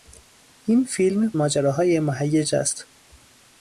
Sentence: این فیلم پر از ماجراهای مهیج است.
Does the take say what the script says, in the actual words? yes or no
no